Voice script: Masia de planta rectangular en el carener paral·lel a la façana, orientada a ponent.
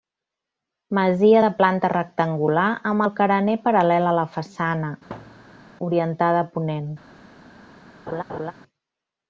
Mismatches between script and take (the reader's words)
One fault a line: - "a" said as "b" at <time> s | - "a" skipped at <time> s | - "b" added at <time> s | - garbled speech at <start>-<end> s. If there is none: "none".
- "en" said as "amb" at 2.9 s